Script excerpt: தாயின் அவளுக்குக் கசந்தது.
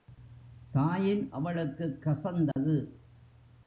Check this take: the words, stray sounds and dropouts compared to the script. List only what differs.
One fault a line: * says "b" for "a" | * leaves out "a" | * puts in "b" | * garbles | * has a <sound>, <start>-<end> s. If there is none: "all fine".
* has a dropout, 2.5-2.6 s